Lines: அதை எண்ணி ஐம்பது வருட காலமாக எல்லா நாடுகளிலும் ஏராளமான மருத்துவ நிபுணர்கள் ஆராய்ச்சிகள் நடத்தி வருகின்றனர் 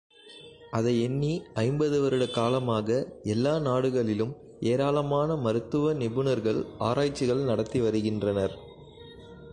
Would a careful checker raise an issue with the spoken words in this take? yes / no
no